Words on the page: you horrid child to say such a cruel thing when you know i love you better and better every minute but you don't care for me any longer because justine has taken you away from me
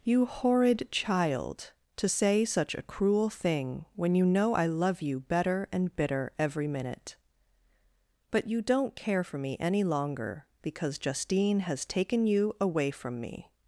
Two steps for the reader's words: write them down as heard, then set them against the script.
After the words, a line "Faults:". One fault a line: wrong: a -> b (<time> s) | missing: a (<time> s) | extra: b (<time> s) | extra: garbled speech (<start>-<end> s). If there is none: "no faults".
you horrid child to say such a cruel thing when you know i love you better and bitter every minute but you don't care for me any longer because justine has taken you away from me
Faults:
wrong: better -> bitter (6.0 s)